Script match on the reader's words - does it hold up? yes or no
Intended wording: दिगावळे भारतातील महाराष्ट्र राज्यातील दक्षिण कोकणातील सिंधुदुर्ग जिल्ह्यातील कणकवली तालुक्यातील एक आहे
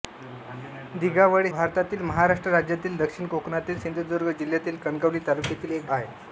yes